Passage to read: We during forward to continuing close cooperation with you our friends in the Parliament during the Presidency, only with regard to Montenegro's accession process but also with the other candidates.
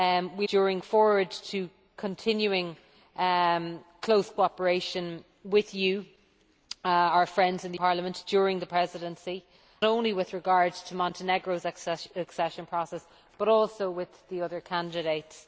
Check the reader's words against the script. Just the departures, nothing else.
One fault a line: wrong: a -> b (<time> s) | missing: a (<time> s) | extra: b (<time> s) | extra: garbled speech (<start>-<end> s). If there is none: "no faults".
no faults